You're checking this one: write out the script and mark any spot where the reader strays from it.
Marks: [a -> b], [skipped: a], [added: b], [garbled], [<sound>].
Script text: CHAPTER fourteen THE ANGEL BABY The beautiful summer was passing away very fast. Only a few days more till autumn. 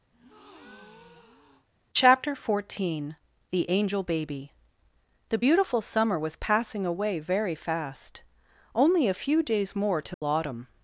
[breath] CHAPTER fourteen THE ANGEL BABY The beautiful summer was passing away very fast. Only a few days more till [dropout] autumn.